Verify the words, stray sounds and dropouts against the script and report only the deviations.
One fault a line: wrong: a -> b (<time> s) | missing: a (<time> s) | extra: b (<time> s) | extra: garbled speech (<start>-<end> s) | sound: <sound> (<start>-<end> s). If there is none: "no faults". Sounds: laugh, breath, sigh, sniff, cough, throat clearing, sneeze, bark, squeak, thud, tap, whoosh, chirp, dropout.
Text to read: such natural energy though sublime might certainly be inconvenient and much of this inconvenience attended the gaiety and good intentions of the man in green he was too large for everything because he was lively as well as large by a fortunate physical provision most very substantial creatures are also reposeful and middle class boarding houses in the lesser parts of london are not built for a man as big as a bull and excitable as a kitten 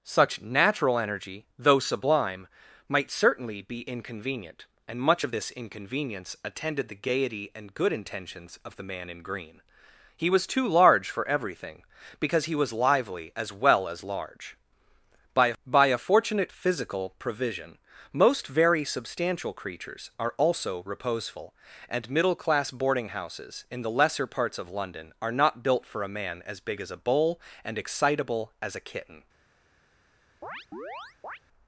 extra: by (15.6 s)
sound: chirp (30.4-31.4 s)